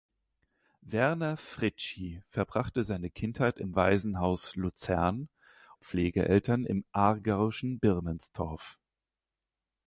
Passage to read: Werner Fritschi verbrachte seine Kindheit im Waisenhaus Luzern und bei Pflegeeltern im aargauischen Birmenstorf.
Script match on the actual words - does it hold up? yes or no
no